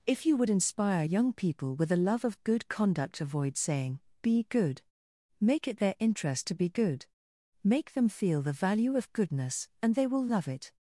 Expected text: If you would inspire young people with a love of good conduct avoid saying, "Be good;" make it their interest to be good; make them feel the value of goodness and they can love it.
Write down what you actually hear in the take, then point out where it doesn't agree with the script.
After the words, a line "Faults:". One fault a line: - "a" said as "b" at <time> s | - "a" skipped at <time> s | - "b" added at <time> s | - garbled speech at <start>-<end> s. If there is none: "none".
If you would inspire young people with a love of good conduct avoid saying, "Be good;" make it their interest to be good; make them feel the value of goodness and they will love it.
Faults:
- "can" said as "will" at 10.1 s